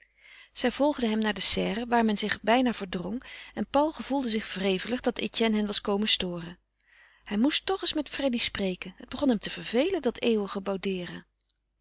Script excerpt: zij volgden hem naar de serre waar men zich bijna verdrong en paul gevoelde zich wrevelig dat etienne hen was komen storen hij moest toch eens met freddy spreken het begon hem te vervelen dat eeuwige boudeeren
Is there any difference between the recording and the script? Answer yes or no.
no